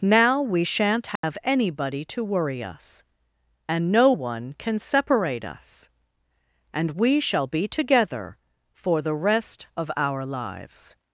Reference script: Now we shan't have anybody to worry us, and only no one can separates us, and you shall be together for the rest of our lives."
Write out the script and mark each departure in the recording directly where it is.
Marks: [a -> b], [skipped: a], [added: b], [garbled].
Now we shan't have anybody to worry us, and [skipped: only] no one can [separates -> separate] us, and [you -> we] shall be together for the rest of our lives."